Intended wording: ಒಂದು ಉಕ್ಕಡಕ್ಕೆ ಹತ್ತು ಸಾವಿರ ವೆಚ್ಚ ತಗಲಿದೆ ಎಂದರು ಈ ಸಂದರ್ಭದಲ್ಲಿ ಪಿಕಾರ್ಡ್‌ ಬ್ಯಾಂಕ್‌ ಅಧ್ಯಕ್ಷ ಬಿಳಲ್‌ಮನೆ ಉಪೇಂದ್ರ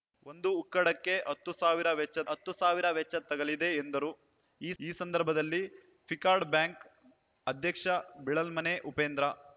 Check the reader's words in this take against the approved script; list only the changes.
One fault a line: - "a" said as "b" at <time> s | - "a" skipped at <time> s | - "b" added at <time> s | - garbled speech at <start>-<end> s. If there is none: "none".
- "ಹತ್ತು ಸಾವಿರ ವೆಚ್ಚ" added at 2.3 s
- "ಈ" added at 4.8 s